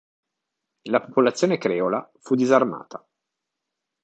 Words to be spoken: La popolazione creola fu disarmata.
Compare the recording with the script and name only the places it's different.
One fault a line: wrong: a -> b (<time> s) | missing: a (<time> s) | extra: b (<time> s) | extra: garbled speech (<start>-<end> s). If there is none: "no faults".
no faults